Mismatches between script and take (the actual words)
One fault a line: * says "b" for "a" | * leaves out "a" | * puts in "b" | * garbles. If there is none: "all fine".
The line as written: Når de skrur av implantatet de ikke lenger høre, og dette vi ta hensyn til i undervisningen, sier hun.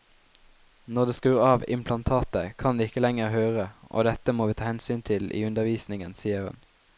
* puts in "kan"
* puts in "må"